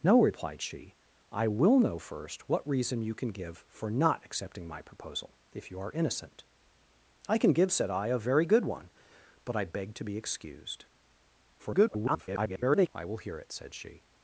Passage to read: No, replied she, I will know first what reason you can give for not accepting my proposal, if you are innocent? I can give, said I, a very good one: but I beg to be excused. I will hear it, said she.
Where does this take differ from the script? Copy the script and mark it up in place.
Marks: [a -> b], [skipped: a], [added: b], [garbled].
No, replied she, I will know first what reason you can give for not accepting my proposal, if you are innocent? I can give, said I, a very good one: but I beg to be excused. [garbled] I will hear it, said she.